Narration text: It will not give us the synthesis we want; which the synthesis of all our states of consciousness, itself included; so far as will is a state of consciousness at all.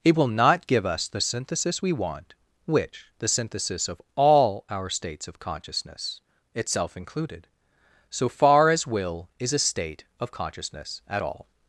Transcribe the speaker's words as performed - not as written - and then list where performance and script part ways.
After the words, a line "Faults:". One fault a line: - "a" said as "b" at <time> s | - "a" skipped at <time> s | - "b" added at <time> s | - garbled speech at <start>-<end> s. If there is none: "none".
It will not give us the synthesis we want; which the synthesis of all our states of consciousness, itself included; so far as will is a state of consciousness at all.
Faults:
none